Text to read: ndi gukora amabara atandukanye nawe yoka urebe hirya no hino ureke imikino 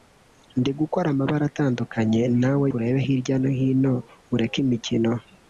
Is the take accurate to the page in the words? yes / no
no